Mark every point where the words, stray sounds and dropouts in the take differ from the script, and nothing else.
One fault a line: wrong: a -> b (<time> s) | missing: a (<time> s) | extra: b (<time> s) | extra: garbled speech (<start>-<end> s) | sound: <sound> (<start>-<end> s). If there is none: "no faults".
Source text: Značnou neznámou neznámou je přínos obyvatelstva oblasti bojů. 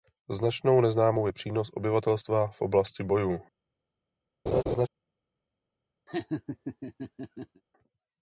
missing: neznámou (1.3 s)
extra: v (2.5 s)
sound: laugh (4.5-4.9 s)
sound: laugh (6.1-7.6 s)